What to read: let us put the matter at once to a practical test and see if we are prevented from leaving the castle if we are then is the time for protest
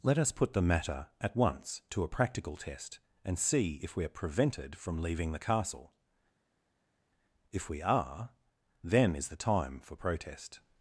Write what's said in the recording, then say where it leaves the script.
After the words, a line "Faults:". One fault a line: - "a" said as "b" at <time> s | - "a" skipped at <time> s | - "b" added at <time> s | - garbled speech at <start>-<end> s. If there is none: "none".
let us put the matter at once to a practical test and see if we are prevented from leaving the castle if we are then is the time for protest
Faults:
none